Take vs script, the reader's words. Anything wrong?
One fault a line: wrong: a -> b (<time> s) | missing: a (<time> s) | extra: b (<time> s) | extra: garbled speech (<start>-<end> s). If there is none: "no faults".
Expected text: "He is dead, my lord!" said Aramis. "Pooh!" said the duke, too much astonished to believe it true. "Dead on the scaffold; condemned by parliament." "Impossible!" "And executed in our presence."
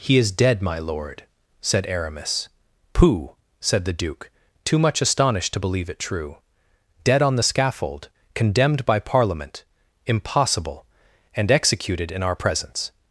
no faults